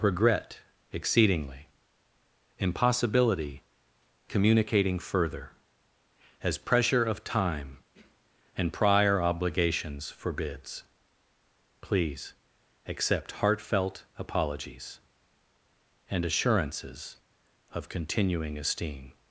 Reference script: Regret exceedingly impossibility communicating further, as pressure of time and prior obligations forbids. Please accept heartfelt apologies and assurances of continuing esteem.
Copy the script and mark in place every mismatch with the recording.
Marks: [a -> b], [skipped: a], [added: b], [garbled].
Regret exceedingly impossibility communicating further, as pressure of time and prior obligations forbids. Please accept heartfelt apologies and assurances of continuing esteem.